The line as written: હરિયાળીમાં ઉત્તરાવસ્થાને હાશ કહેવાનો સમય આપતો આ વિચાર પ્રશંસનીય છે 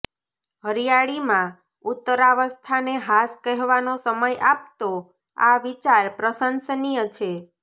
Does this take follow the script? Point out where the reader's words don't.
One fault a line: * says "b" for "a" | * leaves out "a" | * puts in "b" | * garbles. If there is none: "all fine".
all fine